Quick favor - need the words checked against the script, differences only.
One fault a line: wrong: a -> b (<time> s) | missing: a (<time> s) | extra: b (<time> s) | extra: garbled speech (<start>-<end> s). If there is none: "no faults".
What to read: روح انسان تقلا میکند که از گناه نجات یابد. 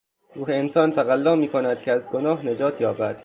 no faults